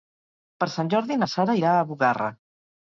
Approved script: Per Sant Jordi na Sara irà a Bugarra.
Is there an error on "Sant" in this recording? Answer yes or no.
no